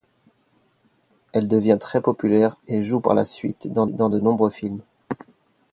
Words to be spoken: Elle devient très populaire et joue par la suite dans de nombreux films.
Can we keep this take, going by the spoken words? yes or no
no